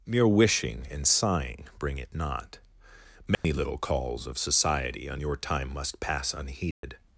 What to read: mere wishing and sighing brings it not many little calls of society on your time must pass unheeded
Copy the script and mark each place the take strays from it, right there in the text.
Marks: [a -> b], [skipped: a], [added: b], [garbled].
mere wishing and sighing [brings -> bring] it not many little calls of society on your time must pass unheeded